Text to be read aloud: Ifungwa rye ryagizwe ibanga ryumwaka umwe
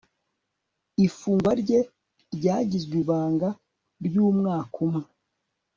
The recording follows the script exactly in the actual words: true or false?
true